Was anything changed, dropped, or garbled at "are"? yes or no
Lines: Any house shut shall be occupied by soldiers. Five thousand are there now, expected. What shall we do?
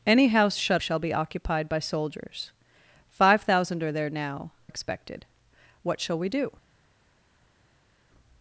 no